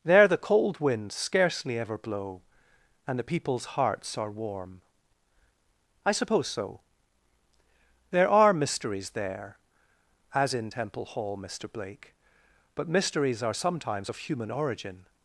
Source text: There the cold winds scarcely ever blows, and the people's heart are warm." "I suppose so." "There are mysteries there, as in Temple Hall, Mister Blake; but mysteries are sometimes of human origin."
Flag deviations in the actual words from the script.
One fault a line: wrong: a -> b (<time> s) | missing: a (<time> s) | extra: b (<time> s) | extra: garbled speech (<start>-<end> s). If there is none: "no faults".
wrong: blows -> blow (2.0 s)
wrong: heart -> hearts (3.8 s)